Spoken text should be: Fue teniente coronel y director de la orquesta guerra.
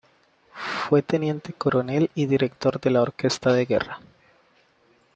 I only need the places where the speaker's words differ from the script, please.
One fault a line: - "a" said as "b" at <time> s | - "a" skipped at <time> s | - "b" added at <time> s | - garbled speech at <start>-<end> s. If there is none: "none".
- "de" added at 3.5 s